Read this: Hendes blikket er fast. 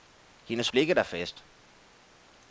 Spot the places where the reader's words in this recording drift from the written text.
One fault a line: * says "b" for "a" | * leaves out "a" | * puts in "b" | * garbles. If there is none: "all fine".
all fine